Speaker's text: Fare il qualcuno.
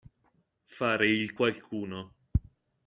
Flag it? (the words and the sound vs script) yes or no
no